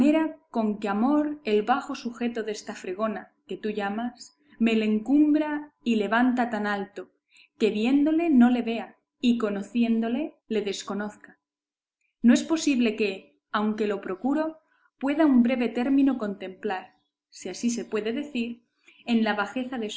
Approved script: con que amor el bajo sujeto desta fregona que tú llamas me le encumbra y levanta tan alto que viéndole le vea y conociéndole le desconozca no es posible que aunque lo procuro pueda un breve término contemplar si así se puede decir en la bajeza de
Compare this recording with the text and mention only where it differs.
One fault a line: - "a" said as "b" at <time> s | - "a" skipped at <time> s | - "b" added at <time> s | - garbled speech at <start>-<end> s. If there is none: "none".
- "no" added at 8.3 s